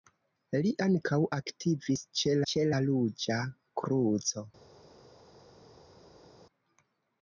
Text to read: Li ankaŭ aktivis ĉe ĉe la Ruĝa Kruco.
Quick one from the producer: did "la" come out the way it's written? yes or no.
yes